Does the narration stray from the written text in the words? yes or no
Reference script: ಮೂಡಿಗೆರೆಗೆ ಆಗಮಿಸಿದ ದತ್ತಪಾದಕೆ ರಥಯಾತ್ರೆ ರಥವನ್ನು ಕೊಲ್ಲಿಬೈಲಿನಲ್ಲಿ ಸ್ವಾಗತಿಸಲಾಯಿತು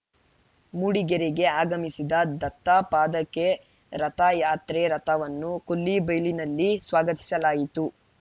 no